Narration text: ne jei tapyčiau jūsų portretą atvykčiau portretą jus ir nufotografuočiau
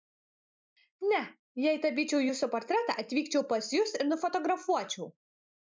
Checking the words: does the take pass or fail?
fail